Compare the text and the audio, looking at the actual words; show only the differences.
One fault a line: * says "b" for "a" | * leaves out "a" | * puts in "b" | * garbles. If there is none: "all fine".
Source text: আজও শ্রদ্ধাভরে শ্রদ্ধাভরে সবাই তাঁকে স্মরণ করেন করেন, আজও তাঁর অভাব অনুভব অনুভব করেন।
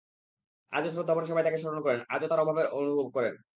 * leaves out "শ্রদ্ধাভরে"
* leaves out "করেন"
* leaves out "অনুভব"